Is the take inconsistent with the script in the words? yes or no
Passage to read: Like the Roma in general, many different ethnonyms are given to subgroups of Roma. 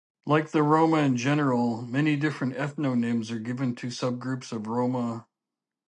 no